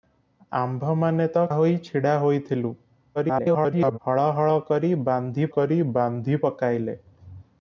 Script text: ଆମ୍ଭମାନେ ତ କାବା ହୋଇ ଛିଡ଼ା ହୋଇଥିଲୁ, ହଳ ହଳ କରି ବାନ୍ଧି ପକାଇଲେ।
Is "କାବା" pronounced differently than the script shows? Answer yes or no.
yes